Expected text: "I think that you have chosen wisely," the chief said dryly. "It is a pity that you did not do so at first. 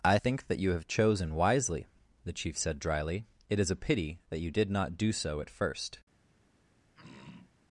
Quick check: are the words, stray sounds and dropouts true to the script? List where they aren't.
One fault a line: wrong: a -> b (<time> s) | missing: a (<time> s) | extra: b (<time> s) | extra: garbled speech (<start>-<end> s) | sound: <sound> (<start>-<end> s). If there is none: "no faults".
sound: throat clearing (6.9-7.6 s)